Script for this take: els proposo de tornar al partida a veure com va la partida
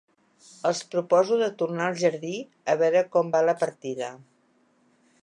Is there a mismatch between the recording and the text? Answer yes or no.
yes